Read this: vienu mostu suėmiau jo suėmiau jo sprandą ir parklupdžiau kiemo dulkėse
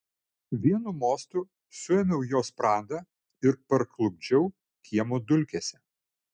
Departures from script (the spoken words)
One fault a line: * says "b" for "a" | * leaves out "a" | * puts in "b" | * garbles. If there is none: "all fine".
* leaves out "suėmiau jo"